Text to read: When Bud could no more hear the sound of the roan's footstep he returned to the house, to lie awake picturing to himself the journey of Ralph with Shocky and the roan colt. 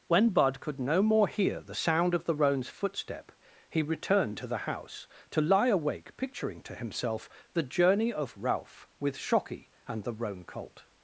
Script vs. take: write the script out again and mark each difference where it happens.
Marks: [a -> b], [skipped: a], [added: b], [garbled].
When Bud could no more hear the sound of the roan's footstep he returned to the house, to lie awake picturing to himself the journey of Ralph with Shocky and the roan colt.